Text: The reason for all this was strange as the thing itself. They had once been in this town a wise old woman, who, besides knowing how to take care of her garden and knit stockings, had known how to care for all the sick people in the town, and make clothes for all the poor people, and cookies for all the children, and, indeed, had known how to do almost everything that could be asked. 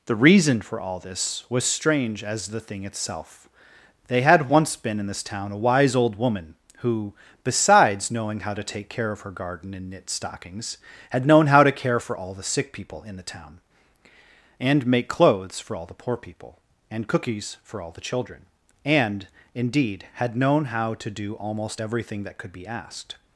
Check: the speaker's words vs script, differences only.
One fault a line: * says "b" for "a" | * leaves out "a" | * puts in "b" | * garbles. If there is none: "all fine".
all fine